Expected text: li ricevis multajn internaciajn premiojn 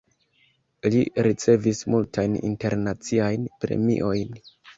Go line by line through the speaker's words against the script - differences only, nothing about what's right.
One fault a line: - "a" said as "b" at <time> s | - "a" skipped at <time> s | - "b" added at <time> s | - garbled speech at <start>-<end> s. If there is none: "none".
none